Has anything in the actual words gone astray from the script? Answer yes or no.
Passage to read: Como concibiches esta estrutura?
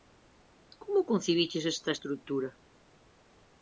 no